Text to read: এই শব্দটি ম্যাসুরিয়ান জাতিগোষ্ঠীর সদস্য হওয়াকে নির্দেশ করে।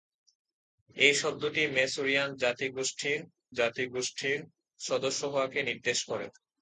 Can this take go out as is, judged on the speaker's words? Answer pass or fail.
fail